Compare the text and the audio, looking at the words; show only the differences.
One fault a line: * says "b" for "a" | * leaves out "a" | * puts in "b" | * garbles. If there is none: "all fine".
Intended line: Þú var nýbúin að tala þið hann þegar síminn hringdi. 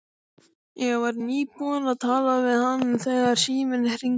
* says "Ég" for "Þú"
* says "við" for "þið"